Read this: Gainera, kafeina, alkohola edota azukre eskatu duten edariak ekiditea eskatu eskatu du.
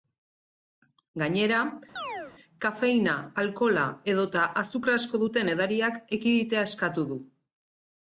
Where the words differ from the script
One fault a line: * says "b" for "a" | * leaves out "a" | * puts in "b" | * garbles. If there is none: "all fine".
* says "asko" for "eskatu"
* leaves out "eskatu"